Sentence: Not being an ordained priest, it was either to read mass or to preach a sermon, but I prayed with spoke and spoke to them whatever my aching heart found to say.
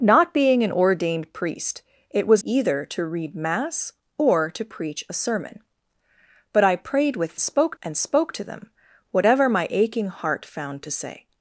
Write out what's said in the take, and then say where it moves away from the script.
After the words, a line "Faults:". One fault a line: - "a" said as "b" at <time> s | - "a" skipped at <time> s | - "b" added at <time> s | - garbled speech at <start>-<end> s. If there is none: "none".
Not being an ordained priest, it was either to read mass or to preach a sermon, but I prayed with spoke and spoke to them whatever my aching heart found to say.
Faults:
none